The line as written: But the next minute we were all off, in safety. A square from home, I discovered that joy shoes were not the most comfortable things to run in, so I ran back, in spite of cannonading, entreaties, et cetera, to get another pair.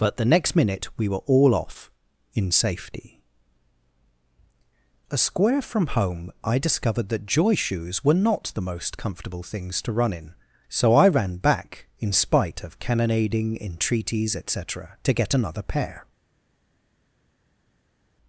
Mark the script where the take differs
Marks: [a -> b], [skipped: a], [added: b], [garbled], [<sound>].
But the next minute we were all off, in safety. A square from home, I discovered that joy shoes were not the most comfortable things to run in, so I ran back, in spite of cannonading, entreaties, et cetera, to get another pair.